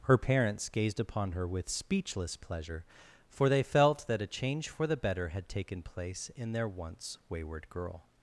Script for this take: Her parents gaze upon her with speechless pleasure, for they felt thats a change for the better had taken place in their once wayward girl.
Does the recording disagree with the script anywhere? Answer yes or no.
yes